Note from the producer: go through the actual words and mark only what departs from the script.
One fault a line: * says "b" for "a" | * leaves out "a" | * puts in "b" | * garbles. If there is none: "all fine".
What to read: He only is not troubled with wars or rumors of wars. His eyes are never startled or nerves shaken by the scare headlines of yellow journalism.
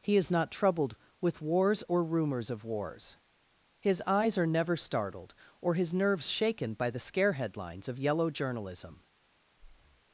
* leaves out "only"
* puts in "his"